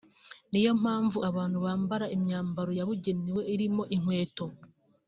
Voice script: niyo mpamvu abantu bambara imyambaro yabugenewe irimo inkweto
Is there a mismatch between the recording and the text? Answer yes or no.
no